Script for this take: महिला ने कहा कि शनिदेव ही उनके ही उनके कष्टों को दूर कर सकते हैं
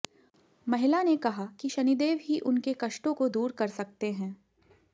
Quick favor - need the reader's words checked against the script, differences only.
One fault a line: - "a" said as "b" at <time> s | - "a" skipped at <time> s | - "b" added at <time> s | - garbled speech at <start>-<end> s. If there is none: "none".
- "ही उनके" skipped at 2.7 s